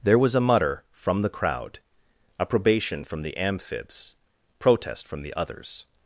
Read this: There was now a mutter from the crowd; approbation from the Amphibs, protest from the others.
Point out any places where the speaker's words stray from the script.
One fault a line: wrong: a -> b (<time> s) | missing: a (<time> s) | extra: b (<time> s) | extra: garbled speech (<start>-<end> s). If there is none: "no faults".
missing: now (0.3 s)